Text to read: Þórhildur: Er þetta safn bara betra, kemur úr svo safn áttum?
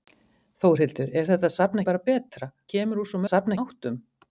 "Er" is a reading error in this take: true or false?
false